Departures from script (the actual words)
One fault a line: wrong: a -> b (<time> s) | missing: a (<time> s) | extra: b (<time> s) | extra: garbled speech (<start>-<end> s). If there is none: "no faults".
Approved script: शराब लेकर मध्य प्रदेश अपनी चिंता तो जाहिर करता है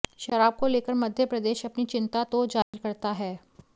extra: को (0.6 s)